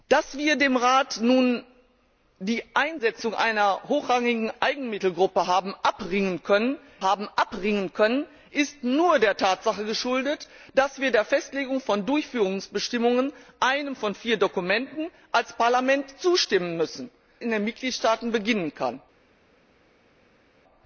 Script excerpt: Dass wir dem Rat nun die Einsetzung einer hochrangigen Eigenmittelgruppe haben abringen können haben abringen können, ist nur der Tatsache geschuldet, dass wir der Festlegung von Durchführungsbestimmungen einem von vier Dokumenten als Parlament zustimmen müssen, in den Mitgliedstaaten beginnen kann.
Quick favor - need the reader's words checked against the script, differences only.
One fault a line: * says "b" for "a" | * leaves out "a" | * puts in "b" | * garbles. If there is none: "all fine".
all fine